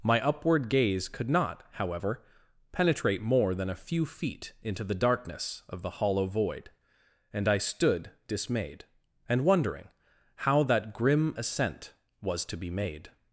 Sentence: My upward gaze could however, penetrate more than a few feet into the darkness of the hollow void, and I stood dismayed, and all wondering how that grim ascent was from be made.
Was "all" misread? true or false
true